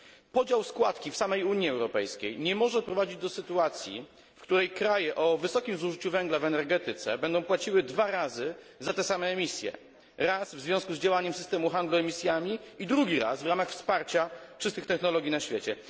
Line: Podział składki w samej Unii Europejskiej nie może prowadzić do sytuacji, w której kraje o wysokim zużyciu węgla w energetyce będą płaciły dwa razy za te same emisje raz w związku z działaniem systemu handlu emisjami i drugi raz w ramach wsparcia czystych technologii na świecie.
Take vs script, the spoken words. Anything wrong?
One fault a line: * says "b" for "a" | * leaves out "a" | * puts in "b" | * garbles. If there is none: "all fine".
all fine